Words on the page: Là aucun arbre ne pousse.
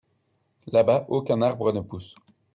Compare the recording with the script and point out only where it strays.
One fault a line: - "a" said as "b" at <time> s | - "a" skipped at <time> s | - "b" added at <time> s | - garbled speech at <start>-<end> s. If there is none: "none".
- "bas" added at 0.8 s